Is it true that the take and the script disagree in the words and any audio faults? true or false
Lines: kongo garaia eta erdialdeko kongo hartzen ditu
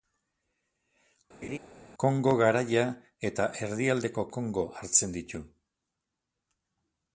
true